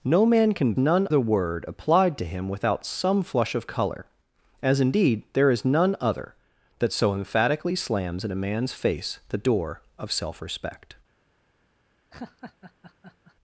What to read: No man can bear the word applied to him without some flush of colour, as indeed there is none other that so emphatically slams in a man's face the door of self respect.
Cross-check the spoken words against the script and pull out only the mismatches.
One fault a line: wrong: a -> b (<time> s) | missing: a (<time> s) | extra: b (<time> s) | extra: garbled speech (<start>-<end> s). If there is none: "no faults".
wrong: bear -> none (0.8 s)